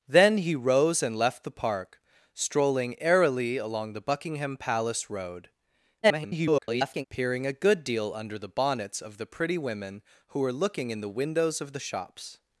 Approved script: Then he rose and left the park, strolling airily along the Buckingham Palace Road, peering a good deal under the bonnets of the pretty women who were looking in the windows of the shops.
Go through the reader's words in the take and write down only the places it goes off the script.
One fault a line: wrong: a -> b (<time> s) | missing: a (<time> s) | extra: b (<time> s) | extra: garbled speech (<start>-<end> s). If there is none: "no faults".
extra: garbled speech (6.0-7.1 s)